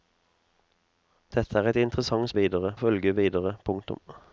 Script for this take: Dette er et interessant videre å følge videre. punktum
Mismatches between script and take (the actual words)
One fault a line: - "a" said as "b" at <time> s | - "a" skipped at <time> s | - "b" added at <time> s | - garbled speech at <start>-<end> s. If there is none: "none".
none